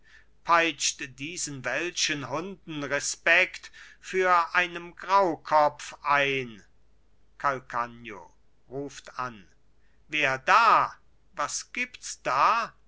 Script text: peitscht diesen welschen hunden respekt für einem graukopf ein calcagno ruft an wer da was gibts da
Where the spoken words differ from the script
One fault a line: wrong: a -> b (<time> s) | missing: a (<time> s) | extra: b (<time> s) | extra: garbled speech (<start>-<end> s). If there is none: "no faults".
no faults